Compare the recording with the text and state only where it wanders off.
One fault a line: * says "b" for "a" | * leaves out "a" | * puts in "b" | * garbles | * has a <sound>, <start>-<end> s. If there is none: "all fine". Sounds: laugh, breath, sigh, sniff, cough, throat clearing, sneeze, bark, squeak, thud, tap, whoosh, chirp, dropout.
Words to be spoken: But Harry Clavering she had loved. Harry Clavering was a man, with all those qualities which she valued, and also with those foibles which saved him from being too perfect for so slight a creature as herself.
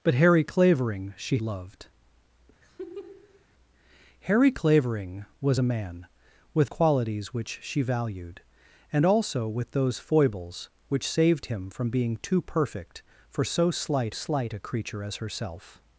* leaves out "had"
* has a laugh, 2.6-3.4 s
* leaves out "all those"
* puts in "slight"